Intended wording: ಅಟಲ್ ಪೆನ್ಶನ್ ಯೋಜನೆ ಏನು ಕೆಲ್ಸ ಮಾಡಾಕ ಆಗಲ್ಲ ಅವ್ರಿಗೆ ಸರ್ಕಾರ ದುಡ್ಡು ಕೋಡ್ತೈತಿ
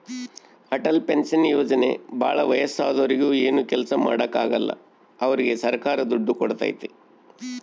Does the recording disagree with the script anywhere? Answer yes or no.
yes